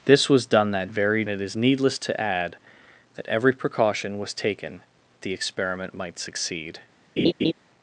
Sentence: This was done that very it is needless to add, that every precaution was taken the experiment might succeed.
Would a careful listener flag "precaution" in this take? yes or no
no